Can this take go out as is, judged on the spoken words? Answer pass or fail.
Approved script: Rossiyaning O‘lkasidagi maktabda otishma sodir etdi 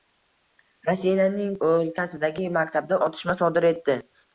pass